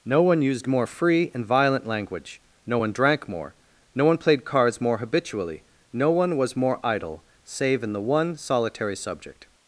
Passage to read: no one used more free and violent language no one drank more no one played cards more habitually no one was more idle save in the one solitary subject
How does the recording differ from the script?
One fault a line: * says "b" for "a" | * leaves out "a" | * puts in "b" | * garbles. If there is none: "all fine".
all fine